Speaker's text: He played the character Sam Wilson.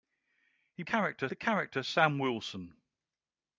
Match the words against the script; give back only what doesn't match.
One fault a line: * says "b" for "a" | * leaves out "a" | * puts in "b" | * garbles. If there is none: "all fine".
* says "character" for "played"